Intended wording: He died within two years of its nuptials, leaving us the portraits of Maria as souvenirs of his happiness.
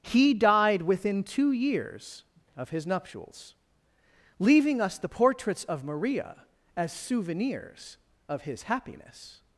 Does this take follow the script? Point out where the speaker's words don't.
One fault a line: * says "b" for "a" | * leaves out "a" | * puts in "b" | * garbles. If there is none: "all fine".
* says "his" for "its"